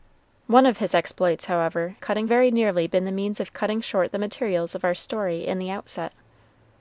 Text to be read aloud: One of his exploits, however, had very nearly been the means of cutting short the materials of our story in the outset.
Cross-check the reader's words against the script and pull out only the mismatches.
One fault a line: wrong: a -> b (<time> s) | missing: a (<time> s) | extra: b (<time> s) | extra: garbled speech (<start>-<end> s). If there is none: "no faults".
wrong: had -> cutting (2.0 s)